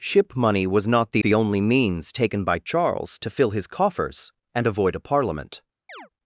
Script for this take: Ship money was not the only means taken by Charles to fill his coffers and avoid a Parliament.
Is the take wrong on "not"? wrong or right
right